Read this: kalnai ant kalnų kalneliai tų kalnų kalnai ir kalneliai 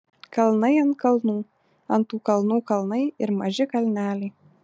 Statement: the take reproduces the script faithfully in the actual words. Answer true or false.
false